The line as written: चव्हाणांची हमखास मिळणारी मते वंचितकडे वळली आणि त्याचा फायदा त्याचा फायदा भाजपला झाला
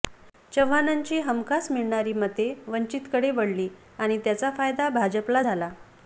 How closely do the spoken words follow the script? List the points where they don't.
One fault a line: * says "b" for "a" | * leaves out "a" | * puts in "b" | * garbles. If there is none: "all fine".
* leaves out "त्याचा फायदा"